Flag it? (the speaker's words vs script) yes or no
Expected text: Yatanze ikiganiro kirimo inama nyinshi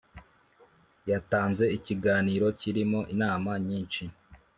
no